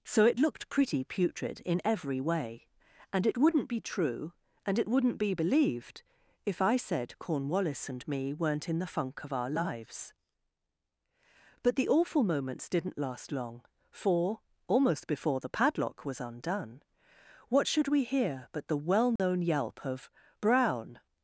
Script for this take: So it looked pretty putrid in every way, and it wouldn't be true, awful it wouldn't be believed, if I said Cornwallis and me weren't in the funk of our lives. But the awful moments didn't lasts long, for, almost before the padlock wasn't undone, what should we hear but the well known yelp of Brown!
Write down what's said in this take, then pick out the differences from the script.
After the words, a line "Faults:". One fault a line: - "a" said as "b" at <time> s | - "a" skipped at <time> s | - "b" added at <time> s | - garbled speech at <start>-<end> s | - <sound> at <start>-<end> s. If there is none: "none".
So it looked pretty putrid in every way, and it wouldn't be true, and it wouldn't be believed, if I said Cornwallis and me weren't in the funk of our lives. But the awful moments didn't last long, for, almost before the padlock was undone, what should we hear but the well known yelp of Brown!
Faults:
- "awful" said as "and" at 4.6 s
- "lasts" said as "last" at 13.0 s
- "wasn't" said as "was" at 16.1 s
- dropout at 19.2-19.2 s